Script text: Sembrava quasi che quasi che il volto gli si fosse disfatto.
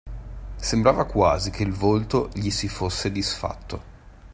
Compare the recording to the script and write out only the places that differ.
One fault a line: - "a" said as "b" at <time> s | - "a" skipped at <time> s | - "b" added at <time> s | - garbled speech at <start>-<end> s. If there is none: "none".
- "quasi che" skipped at 1.6 s